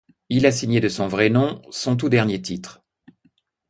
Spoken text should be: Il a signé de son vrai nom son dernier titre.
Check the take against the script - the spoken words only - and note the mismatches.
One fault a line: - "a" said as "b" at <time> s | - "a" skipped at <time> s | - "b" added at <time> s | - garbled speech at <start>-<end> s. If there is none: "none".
- "tout" added at 1.9 s